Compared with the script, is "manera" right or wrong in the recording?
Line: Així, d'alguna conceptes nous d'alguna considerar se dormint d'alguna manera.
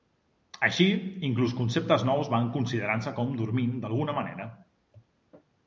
right